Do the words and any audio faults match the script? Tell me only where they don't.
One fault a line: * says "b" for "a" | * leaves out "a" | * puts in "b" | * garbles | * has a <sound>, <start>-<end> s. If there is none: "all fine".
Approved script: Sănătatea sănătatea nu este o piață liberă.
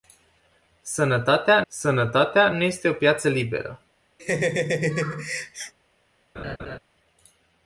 * has a laugh, 4.2-5.7 s
* has a laugh, 6.4-6.8 s